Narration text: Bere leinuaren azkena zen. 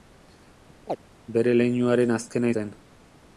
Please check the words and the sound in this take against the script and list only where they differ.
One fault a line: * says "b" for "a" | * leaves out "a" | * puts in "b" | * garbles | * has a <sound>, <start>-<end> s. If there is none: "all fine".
* has a chirp, 0.9-1.0 s